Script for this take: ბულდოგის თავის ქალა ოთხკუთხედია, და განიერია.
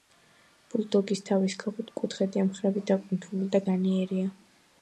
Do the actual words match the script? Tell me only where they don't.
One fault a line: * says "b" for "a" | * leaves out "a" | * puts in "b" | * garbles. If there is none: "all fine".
* puts in "მხრები დაკუნთული"